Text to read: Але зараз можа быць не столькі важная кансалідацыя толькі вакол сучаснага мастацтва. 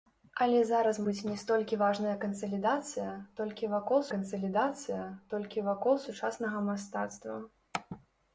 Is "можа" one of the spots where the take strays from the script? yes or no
yes